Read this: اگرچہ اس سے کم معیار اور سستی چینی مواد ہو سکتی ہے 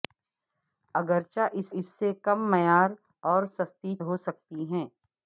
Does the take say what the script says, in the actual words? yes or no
no